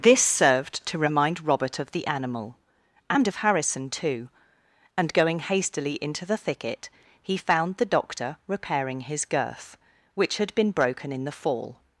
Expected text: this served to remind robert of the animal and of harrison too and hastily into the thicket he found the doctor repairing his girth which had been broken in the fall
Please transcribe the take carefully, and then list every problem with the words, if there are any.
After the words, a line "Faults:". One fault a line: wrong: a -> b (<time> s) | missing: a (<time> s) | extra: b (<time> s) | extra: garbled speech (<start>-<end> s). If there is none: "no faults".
this served to remind robert of the animal and of harrison too and going hastily into the thicket he found the doctor repairing his girth which had been broken in the fall
Faults:
extra: going (5.1 s)